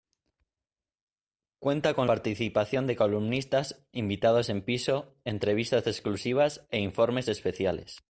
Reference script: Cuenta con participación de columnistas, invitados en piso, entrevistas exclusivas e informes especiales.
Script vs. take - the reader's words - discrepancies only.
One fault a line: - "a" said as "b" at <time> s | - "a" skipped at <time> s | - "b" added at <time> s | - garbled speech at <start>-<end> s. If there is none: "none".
none